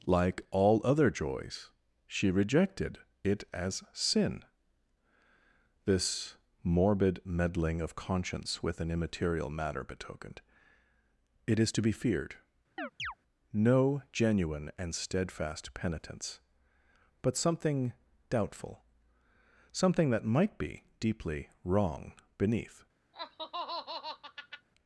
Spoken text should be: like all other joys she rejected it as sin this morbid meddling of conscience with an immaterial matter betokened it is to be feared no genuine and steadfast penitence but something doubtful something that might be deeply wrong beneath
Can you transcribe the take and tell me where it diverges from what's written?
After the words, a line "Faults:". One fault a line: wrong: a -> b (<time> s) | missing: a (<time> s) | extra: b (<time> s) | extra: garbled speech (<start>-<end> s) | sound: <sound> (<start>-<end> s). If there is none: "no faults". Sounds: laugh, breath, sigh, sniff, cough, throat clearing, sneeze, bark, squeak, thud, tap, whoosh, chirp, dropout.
like all other joys she rejected it as sin this morbid meddling of conscience with an immaterial matter betokened it is to be feared no genuine and steadfast penitence but something doubtful something that might be deeply wrong beneath
Faults:
sound: chirp (12.8-13.1 s)
sound: laugh (23.1-24.7 s)